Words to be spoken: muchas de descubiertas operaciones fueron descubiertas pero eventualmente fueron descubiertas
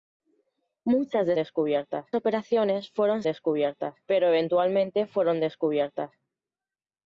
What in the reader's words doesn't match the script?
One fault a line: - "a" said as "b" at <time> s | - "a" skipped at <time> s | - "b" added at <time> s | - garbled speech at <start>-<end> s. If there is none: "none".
none